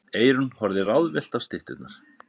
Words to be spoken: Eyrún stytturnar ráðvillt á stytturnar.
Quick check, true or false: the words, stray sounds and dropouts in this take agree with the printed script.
false